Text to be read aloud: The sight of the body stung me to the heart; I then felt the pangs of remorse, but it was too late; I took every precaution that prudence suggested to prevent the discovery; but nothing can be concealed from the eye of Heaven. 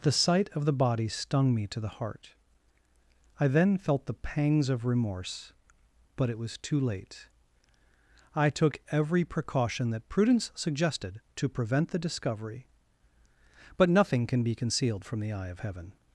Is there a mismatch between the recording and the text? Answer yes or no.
no